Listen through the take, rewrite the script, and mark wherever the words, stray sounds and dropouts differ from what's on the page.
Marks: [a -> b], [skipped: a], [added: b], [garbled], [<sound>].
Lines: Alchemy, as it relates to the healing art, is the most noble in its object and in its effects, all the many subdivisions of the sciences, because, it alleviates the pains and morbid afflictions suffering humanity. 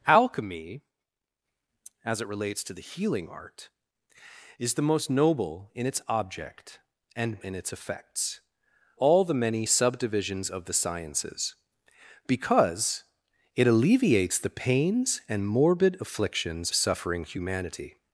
Alchemy, as it relates to the healing art, is the most noble in its object and in its effects, all the many subdivisions of the sciences, because, it alleviates the pains and morbid afflictions suffering humanity.